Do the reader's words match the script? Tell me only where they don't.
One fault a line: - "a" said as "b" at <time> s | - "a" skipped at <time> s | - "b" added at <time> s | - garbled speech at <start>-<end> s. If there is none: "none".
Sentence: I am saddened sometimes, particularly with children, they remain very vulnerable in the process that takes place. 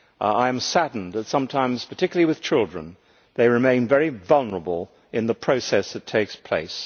- "that" added at 1.1 s